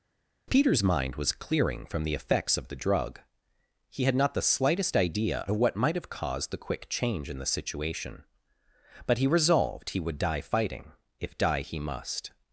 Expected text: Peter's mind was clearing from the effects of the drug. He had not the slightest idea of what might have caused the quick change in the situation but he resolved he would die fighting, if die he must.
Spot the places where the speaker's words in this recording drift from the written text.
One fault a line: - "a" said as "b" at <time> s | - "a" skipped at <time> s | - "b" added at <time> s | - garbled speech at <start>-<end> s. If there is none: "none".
none